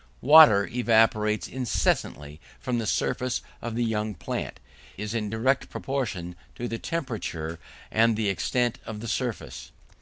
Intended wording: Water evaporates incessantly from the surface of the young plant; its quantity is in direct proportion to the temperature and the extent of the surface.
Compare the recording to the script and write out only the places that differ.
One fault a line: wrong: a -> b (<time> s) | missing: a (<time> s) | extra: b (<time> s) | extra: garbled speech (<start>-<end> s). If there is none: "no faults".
missing: its quantity (4.6 s)